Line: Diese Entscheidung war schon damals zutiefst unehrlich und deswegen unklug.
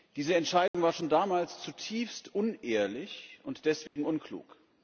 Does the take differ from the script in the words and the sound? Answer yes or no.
yes